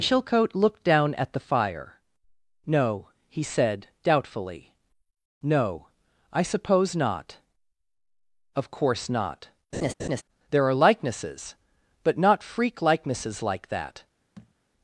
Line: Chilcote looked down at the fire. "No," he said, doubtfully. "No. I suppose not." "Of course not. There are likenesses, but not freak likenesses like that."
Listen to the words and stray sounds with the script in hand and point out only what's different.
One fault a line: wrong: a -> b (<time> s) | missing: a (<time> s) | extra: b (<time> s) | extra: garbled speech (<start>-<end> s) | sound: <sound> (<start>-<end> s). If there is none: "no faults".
sound: laugh (9.7-10.2 s)
sound: thud (14.4-14.5 s)